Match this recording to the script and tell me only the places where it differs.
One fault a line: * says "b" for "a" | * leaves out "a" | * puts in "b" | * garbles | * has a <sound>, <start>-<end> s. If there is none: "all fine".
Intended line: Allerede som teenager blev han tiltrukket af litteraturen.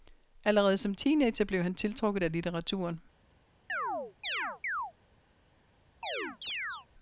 * has a chirp, 3.7-4.9 s
* has a chirp, 6.0-6.9 s